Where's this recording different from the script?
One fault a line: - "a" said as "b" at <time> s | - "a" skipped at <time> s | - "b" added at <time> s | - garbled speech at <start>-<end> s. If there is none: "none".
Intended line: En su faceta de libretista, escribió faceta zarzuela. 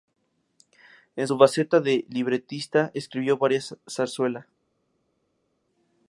- "faceta" said as "varias" at 3.4 s